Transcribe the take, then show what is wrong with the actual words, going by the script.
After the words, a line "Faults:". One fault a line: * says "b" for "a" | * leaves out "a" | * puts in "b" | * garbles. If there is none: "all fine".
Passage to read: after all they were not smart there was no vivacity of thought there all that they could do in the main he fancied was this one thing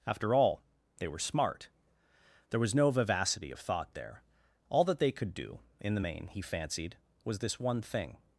after all they were smart there was no vivacity of thought there all that they could do in the main he fancied was this one thing
Faults:
* leaves out "not"